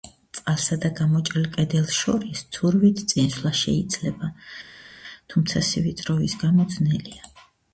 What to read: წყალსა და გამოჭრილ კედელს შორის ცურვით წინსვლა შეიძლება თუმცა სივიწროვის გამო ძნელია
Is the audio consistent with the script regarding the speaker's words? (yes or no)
yes